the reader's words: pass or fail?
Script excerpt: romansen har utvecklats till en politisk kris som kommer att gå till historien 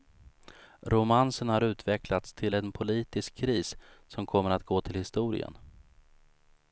pass